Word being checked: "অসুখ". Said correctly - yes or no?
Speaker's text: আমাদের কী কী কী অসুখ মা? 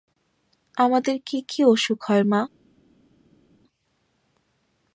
no